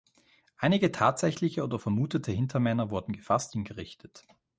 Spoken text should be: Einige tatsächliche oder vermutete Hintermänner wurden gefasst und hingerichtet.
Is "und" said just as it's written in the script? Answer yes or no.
no